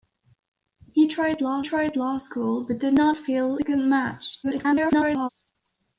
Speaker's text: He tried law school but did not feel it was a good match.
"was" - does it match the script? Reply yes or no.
no